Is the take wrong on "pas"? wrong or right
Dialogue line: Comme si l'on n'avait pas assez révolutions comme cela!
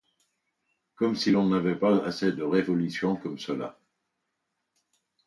right